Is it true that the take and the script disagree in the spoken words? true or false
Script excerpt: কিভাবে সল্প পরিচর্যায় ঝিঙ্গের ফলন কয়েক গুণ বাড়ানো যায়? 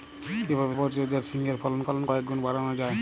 true